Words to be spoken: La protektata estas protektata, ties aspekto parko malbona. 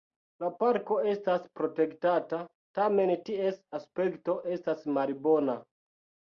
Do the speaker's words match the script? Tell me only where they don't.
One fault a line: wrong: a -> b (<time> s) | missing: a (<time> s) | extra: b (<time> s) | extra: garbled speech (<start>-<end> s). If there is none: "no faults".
wrong: protektata -> parko (0.6 s)
extra: tamen (2.8 s)
wrong: parko -> estas (4.6 s)